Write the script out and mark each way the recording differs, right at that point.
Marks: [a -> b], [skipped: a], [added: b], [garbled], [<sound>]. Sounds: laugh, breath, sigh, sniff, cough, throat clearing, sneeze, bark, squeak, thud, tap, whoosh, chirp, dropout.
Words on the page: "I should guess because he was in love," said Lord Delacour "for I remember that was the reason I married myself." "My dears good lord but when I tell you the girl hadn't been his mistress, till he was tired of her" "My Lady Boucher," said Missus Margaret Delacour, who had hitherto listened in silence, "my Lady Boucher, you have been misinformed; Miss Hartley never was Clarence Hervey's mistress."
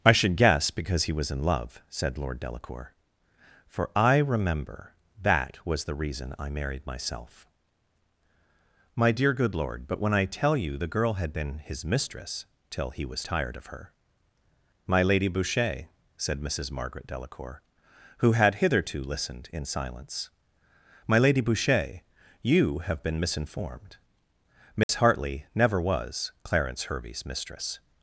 "I should guess because he was in love," said Lord Delacour "for I remember that was the reason I married myself." "My [dears -> dear] good lord but when I tell you the girl [hadn't -> had] been his mistress, till he was tired of her" "My Lady Boucher," said Missus Margaret Delacour, who had hitherto listened in silence, "my Lady Boucher, you have been misinformed; Miss [dropout] Hartley never was Clarence Hervey's mistress."